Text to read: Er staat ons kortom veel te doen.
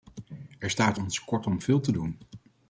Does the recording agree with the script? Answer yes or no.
yes